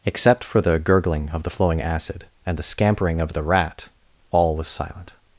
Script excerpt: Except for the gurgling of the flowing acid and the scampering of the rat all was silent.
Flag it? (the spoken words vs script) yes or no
no